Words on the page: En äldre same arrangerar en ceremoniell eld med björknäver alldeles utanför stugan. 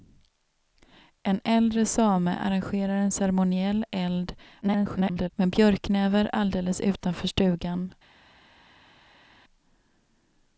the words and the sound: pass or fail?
fail